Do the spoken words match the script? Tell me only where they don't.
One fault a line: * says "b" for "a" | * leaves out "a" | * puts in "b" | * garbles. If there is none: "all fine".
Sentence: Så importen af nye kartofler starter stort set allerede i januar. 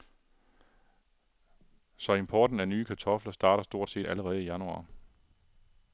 all fine